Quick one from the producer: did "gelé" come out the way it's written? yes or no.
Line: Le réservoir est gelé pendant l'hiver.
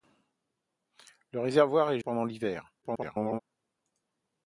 no